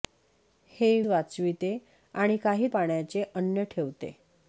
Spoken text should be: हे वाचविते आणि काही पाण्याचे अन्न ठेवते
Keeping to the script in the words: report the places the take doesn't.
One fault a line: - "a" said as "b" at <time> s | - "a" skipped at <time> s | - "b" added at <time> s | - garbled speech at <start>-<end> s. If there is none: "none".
none